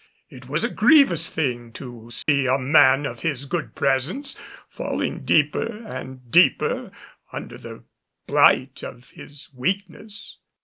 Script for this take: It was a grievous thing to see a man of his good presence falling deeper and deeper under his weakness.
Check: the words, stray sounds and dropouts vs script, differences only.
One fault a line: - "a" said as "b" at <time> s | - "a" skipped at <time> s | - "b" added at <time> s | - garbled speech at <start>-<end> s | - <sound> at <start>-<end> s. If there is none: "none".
- dropout at 2.2-2.3 s
- "the blight of" added at 7.6 s